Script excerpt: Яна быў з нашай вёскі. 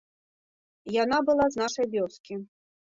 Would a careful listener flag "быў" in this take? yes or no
yes